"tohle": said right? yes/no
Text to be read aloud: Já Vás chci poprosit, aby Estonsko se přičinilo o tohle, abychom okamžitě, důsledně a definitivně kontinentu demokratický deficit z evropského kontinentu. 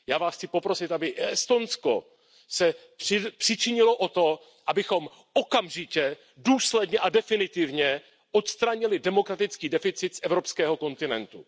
no